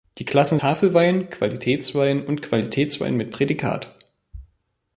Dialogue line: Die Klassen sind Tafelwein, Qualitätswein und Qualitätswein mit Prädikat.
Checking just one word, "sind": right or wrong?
wrong